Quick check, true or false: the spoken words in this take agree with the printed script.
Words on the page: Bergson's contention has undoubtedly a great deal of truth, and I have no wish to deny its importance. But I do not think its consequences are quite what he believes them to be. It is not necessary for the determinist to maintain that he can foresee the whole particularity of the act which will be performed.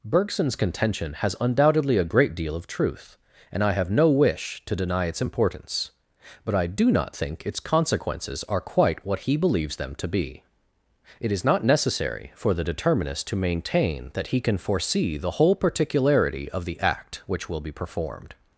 true